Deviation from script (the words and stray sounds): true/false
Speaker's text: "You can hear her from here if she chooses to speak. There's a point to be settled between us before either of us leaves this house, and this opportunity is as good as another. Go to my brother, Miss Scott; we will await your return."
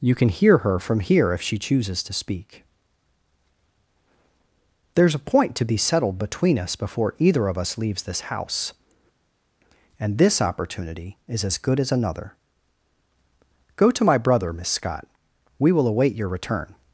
false